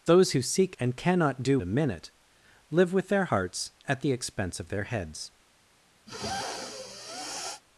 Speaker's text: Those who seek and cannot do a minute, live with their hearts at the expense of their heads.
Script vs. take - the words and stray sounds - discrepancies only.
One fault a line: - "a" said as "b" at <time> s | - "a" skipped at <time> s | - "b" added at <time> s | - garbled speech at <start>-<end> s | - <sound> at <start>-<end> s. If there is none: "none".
- sniff at 6.1-7.6 s